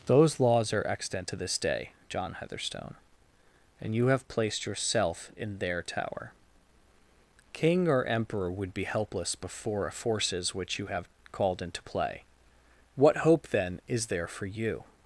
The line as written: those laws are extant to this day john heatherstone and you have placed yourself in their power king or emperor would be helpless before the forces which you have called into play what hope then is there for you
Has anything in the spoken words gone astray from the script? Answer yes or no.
yes